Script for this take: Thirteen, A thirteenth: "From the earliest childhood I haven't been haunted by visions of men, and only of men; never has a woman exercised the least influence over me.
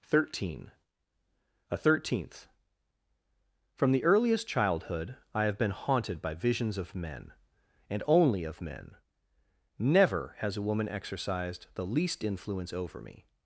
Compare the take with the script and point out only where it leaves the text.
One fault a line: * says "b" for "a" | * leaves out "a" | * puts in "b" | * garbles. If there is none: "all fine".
* says "have" for "haven't"